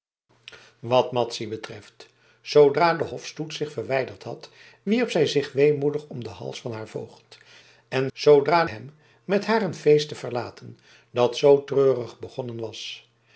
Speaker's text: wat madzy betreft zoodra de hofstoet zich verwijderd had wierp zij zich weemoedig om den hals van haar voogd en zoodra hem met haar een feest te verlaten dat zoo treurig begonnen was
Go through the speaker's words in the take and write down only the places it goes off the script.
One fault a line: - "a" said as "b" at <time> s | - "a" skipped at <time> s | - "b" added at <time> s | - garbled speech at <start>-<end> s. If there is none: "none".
none